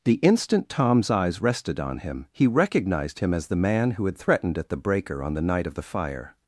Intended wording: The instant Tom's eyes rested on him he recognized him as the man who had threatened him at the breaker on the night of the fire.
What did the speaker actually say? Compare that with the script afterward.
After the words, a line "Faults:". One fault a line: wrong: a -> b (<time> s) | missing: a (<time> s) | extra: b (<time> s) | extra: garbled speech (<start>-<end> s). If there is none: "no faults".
The instant Tom's eyes rested on him he recognized him as the man who had threatened at the breaker on the night of the fire.
Faults:
missing: him (4.6 s)